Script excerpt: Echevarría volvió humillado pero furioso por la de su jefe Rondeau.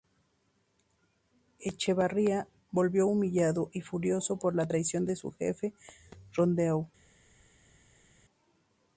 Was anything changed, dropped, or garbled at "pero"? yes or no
yes